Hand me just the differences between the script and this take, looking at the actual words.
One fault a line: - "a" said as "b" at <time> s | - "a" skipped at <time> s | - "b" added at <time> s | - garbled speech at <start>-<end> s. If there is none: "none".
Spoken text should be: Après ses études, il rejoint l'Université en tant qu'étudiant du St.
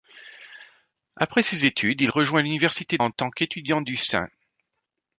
none